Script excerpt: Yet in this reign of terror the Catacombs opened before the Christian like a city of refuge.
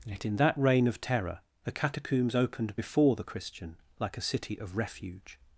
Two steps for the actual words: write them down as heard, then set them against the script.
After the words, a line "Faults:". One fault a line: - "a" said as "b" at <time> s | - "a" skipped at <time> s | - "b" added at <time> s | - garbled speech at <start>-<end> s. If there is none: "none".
Yet in that reign of terror the Catacombs opened before the Christian like a city of refuge.
Faults:
- "this" said as "that" at 0.4 s